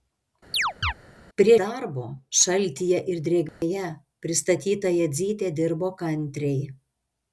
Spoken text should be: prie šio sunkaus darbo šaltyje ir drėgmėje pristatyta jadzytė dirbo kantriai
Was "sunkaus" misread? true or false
true